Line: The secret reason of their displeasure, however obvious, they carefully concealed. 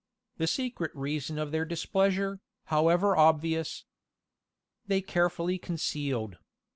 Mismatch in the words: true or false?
false